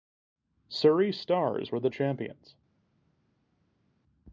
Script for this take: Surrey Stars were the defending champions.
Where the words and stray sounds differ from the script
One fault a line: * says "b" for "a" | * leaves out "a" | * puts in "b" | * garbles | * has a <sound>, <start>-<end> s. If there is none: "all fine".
* leaves out "defending"